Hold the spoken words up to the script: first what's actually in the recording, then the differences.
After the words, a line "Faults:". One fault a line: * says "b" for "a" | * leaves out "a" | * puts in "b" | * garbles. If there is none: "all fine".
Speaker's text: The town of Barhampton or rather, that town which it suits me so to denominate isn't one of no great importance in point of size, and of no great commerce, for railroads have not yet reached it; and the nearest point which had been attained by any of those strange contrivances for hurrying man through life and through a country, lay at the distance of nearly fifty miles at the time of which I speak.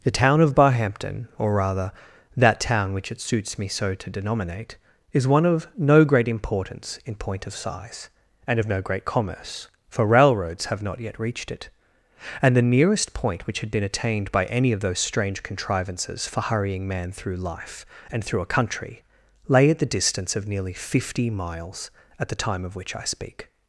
The town of Barhampton or rather, that town which it suits me so to denominate is one of no great importance in point of size, and of no great commerce, for railroads have not yet reached it; and the nearest point which had been attained by any of those strange contrivances for hurrying man through life and through a country, lay at the distance of nearly fifty miles at the time of which I speak.
Faults:
* says "is" for "isn't"